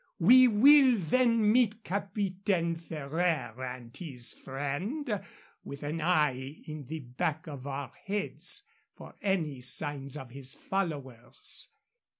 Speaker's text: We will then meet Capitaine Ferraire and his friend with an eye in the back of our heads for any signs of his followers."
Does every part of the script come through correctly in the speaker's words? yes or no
yes